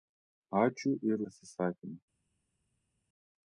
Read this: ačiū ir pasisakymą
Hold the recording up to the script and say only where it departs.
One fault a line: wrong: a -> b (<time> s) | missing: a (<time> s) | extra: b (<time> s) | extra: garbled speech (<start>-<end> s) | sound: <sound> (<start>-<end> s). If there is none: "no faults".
no faults